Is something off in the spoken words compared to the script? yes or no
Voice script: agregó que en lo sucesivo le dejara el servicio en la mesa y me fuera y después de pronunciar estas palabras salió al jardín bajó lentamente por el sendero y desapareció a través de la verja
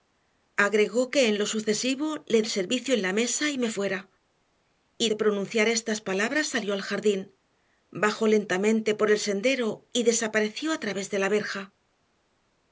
yes